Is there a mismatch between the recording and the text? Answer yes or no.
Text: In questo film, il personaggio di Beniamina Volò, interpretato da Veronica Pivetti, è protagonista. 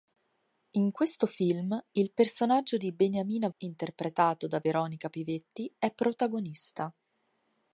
yes